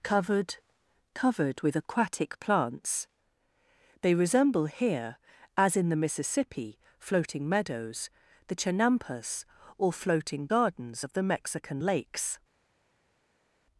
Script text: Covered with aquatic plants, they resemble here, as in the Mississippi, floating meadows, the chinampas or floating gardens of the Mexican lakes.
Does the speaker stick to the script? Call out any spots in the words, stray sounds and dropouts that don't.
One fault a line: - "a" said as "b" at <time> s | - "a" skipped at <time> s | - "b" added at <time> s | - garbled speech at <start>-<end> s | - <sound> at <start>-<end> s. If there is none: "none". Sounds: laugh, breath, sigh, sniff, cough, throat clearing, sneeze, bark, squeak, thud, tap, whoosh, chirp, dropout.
- "covered" added at 1.1 s